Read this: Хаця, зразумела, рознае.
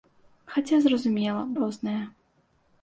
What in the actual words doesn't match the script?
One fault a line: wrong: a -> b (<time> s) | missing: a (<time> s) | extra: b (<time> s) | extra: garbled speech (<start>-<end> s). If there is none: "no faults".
no faults